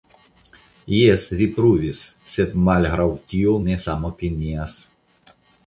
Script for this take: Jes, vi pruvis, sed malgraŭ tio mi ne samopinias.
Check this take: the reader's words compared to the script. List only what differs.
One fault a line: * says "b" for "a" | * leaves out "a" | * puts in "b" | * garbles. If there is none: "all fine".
* leaves out "mi"